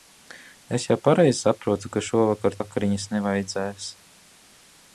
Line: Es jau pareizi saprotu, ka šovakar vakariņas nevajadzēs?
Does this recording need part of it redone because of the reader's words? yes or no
no